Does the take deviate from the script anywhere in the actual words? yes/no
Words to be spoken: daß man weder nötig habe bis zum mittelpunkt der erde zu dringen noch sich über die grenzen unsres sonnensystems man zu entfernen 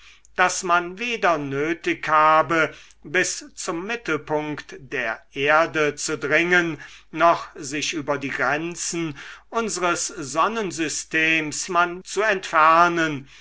no